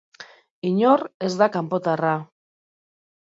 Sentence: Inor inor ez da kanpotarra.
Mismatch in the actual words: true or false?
true